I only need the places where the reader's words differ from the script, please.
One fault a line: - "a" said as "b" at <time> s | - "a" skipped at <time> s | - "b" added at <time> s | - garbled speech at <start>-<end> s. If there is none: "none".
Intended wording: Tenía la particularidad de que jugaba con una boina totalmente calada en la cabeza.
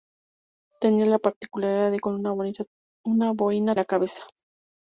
- "que jugaba" skipped at 2.0 s
- "totalmente calada en" skipped at 3.7 s